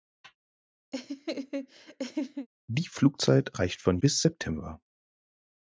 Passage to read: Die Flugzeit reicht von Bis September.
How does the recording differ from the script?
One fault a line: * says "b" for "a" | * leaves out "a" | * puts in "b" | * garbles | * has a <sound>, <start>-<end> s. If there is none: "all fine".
* has a laugh, 0.9-2.5 s